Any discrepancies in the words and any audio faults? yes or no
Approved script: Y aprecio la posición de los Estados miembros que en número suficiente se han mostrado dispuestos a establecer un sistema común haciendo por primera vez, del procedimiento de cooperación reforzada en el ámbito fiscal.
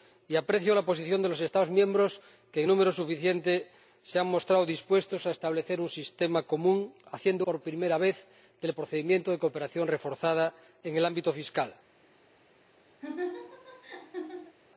yes